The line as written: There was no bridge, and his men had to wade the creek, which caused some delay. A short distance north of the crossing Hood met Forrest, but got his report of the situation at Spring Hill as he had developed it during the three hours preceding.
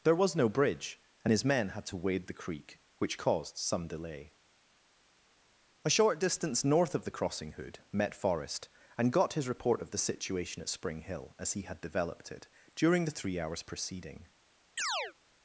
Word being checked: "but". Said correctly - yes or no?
no